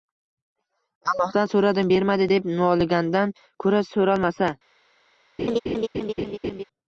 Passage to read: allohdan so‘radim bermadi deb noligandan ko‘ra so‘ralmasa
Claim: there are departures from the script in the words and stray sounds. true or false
true